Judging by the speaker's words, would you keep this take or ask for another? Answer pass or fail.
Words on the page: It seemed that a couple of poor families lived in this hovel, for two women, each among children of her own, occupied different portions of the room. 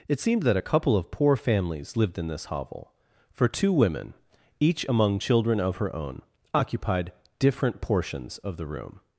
pass